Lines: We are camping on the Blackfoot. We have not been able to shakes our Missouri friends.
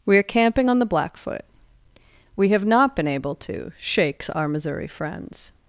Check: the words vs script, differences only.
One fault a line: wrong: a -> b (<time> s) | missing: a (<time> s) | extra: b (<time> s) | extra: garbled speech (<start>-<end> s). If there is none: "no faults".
no faults